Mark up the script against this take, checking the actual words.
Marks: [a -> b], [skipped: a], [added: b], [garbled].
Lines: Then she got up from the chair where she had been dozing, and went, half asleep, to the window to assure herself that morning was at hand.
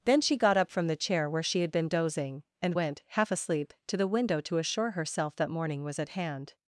Then she got up from the chair where she had been dozing, and went, half asleep, to the window to assure herself that morning was at hand.